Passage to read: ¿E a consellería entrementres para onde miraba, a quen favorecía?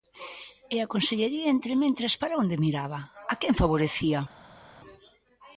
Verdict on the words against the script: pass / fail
pass